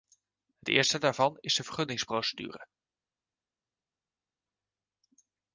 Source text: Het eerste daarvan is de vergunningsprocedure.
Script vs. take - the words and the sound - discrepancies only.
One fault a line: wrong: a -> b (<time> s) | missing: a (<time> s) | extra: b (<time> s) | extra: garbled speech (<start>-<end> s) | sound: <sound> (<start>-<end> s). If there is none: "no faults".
no faults